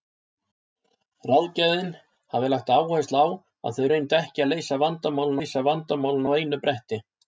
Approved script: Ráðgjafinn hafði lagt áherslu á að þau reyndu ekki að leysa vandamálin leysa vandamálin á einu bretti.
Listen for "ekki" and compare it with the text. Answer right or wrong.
right